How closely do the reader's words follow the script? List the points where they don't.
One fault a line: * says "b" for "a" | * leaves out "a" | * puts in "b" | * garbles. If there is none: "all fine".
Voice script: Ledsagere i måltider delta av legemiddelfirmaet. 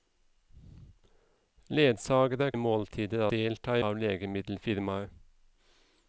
all fine